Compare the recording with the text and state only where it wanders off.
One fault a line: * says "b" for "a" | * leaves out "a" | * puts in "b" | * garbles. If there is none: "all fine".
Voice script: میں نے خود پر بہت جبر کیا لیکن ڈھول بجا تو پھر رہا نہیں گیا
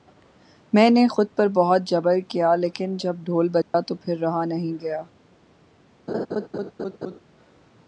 * puts in "جب"